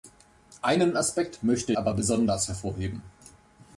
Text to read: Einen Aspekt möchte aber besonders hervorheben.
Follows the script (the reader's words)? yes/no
yes